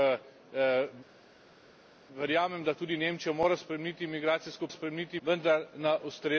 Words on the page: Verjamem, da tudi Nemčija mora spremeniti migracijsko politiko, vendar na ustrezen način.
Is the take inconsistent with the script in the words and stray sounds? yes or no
yes